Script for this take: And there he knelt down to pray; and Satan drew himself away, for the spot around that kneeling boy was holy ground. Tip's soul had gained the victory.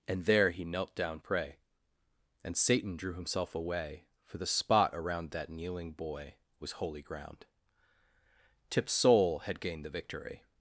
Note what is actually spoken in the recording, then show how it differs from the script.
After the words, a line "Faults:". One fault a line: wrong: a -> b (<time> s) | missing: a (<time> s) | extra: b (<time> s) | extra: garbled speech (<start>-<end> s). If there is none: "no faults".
And there he knelt down pray; and Satan drew himself away, for the spot around that kneeling boy was holy ground. Tip's soul had gained the victory.
Faults:
missing: to (1.2 s)